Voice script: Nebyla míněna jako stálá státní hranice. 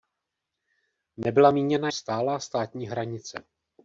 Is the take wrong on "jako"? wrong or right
wrong